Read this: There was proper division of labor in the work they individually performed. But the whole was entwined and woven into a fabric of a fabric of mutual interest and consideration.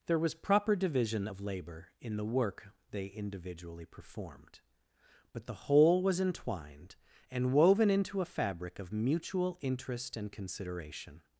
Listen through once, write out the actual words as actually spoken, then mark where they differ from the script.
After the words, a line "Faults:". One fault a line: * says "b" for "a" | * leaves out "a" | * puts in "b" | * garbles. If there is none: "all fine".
There was proper division of labor in the work they individually performed. But the whole was entwined and woven into a fabric of mutual interest and consideration.
Faults:
* leaves out "a fabric of"